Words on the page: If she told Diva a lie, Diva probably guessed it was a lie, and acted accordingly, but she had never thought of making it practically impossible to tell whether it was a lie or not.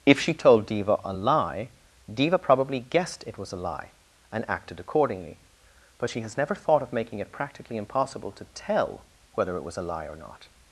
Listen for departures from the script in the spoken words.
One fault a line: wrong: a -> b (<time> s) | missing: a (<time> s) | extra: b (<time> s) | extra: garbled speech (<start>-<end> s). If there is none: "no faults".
wrong: had -> has (6.2 s)